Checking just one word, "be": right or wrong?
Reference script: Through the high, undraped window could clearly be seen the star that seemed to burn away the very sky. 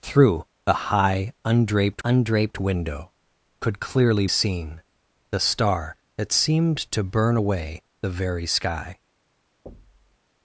wrong